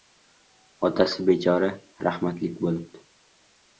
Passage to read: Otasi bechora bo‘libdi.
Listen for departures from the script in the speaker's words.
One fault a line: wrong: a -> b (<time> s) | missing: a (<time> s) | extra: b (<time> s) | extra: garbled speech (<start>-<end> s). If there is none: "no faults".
extra: rahmatlik (2.1 s)